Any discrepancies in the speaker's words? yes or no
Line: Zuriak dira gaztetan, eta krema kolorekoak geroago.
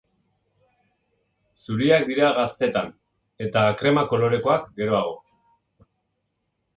no